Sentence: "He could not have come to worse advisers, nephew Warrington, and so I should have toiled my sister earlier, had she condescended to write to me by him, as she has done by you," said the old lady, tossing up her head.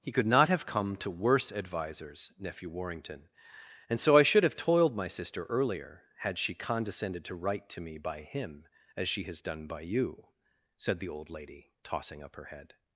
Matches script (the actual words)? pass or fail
pass